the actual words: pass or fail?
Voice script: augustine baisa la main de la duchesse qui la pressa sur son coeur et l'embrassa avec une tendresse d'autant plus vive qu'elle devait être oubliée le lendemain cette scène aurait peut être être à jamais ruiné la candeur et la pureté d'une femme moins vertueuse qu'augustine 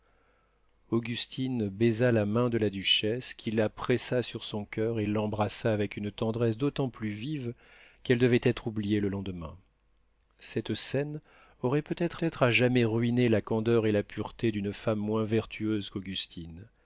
pass